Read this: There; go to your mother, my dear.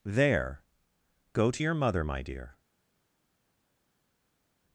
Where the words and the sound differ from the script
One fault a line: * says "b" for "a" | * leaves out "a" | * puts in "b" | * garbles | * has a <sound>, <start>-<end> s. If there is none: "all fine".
all fine